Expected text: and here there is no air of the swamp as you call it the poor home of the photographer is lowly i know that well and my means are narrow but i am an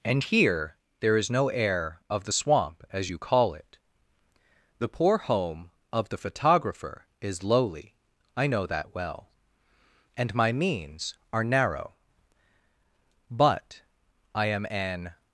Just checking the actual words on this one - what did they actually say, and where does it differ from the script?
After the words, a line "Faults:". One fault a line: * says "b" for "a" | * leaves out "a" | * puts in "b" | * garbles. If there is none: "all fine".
and here there is no air of the swamp as you call it the poor home of the photographer is lowly i know that well and my means are narrow but i am an
Faults:
all fine